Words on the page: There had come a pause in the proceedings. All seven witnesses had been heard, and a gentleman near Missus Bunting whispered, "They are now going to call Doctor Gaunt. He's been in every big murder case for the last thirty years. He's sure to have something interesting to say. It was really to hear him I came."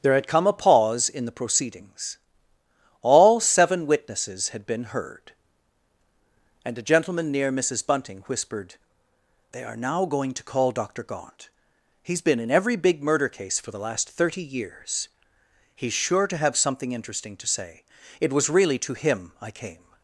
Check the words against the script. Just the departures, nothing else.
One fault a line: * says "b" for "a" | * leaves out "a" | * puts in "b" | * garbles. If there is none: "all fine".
* leaves out "hear"